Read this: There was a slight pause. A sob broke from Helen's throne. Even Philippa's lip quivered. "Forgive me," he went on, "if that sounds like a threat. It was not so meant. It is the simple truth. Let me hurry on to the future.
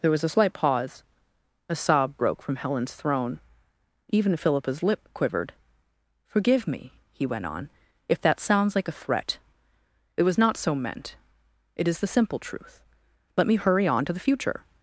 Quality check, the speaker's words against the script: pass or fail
pass